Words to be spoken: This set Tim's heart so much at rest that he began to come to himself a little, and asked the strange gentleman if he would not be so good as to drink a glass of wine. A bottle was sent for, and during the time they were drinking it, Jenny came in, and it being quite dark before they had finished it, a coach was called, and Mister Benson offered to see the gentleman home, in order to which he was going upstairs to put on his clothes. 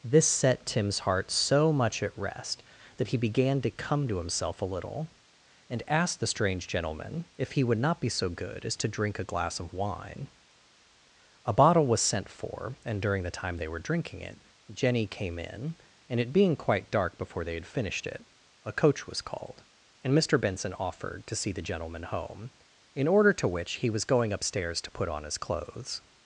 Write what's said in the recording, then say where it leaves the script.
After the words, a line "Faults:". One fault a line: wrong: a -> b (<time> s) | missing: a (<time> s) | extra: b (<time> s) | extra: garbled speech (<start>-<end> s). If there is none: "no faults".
This set Tim's heart so much at rest that he began to come to himself a little, and asked the strange gentleman if he would not be so good as to drink a glass of wine. A bottle was sent for, and during the time they were drinking it, Jenny came in, and it being quite dark before they had finished it, a coach was called, and Mister Benson offered to see the gentleman home, in order to which he was going upstairs to put on his clothes.
Faults:
no faults